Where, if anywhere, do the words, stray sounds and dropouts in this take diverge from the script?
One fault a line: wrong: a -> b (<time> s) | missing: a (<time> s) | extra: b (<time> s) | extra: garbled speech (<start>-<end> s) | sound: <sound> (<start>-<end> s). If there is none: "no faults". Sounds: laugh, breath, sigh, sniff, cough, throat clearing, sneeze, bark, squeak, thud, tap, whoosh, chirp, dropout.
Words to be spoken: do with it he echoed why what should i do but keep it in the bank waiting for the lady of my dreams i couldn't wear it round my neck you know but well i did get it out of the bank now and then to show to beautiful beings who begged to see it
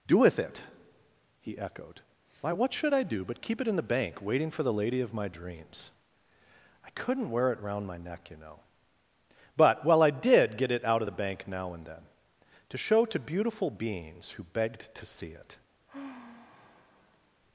sound: sigh (15.9-17.4 s)